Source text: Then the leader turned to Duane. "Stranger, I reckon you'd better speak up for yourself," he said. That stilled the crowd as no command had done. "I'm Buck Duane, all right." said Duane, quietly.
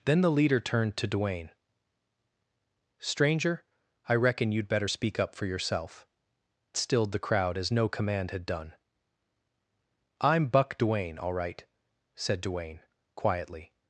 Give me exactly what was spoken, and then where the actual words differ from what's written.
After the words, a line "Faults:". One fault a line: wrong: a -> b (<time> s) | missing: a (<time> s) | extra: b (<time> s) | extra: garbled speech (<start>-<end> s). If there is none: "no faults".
Then the leader turned to Duane. "Stranger, I reckon you'd better speak up for yourself," stilled the crowd as no command had done. "I'm Buck Duane, all right." said Duane, quietly.
Faults:
missing: he said That (6.1 s)